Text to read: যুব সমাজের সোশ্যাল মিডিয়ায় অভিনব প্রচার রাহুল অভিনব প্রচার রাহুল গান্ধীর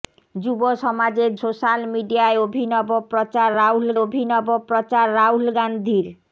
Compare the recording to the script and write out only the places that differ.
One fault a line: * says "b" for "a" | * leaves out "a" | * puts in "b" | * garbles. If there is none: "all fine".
all fine